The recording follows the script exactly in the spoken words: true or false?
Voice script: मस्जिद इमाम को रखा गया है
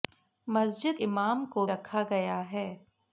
true